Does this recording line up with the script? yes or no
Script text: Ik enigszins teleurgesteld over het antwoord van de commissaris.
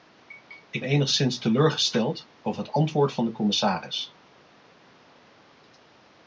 yes